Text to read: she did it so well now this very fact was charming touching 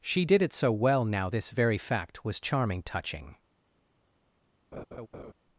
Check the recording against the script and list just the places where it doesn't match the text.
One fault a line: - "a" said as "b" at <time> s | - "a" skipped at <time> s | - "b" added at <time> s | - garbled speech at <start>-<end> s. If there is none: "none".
none